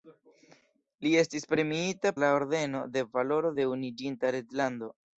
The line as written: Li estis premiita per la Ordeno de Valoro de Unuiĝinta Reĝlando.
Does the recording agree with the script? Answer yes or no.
no